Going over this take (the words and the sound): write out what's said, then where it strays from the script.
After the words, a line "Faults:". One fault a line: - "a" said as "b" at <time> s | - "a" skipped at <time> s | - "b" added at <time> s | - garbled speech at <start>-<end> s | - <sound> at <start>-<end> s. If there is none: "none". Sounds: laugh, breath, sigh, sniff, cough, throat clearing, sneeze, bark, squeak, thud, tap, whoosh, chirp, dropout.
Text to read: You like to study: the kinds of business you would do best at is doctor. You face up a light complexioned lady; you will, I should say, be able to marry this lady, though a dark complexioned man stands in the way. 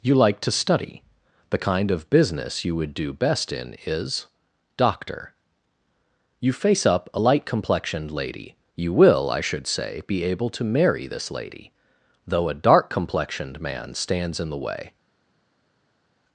You like to study: the kind of business you would do best in is doctor. You face up a light complexioned lady; you will, I should say, be able to marry this lady, though a dark complexioned man stands in the way.
Faults:
- "kinds" said as "kind" at 1.6 s
- "at" said as "in" at 3.5 s